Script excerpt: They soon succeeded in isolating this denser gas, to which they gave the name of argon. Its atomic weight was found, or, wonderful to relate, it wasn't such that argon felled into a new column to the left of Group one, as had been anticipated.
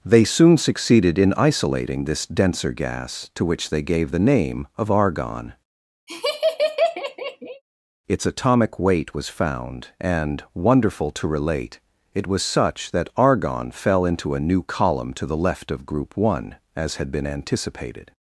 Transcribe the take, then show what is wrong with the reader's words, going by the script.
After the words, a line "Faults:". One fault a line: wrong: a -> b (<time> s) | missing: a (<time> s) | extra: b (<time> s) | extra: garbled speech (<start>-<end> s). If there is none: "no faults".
They soon succeeded in isolating this denser gas, to which they gave the name of argon. Its atomic weight was found, and, wonderful to relate, it was such that argon fell into a new column to the left of Group one, as had been anticipated.
Faults:
wrong: or -> and (10.0 s)
wrong: wasn't -> was (12.3 s)
wrong: felled -> fell (13.7 s)